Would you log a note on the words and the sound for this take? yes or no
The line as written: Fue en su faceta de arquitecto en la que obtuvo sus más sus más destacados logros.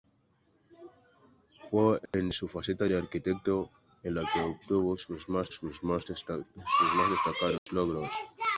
yes